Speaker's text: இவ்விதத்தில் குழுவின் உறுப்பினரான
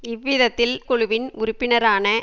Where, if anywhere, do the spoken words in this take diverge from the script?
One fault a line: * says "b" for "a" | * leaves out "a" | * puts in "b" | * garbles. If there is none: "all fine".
all fine